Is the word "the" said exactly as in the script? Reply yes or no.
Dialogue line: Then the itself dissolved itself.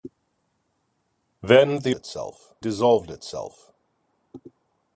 yes